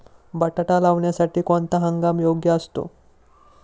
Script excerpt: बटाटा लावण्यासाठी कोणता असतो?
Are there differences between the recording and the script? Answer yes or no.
yes